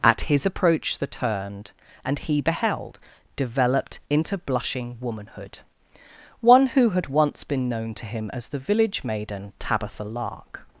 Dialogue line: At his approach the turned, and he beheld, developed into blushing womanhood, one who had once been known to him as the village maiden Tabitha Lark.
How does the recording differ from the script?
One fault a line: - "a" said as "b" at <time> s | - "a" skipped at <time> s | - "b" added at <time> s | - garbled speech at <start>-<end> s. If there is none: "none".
none